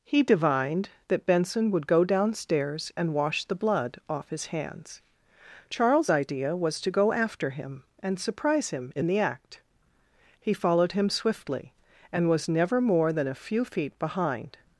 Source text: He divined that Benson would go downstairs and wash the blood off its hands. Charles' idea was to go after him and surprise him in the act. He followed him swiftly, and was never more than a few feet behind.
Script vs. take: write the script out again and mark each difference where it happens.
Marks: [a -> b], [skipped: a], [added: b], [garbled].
He divined that Benson would go downstairs and wash the blood off [its -> his] hands. Charles' idea was to go after him and surprise him in the act. He followed him swiftly, and was never more than a few feet behind.